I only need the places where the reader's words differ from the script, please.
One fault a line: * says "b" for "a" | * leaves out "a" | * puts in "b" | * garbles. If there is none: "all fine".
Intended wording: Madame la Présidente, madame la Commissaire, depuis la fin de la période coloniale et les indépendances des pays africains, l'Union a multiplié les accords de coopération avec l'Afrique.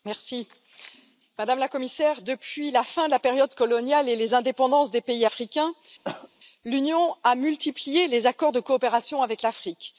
all fine